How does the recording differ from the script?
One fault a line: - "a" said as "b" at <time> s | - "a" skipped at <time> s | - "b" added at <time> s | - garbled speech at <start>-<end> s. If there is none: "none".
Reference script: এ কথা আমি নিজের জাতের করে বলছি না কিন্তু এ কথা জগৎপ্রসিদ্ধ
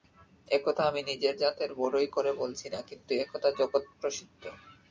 - "বড়াই" added at 1.7 s